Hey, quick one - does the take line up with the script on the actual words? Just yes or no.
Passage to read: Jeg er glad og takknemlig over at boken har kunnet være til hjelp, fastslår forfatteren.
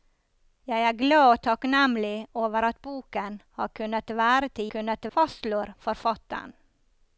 no